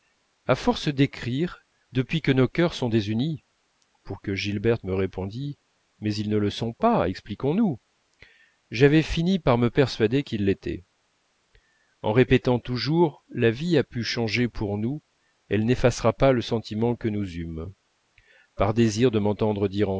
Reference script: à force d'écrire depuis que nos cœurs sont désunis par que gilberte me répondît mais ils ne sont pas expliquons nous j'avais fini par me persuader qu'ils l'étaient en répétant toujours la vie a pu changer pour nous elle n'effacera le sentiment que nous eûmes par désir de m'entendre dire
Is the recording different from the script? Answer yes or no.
yes